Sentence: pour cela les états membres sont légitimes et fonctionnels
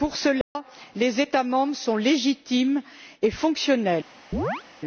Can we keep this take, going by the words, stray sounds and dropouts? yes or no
no